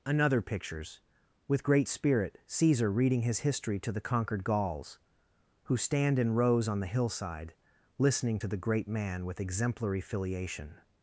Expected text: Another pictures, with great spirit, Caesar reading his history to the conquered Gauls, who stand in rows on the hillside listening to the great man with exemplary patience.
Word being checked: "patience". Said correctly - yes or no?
no